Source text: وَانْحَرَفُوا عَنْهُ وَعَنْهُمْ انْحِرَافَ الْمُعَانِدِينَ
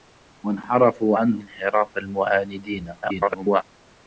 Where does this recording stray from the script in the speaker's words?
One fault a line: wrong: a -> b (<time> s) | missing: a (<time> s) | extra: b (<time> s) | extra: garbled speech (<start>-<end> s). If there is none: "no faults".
missing: وَعَنْهُمْ (1.4 s)
extra: garbled speech (3.0-3.6 s)